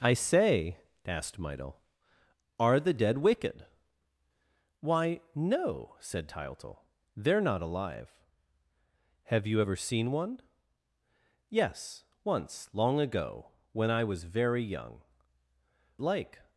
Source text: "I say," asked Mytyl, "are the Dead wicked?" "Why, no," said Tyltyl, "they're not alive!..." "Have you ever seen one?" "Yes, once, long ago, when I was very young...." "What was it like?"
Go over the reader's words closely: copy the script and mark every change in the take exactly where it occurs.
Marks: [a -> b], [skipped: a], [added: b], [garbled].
"I say," asked Mytyl, "are the Dead wicked?" "Why, no," said Tyltyl, "they're not alive!..." "Have you ever seen one?" "Yes, once, long ago, when I was very young...." [skipped: "What was it] like?"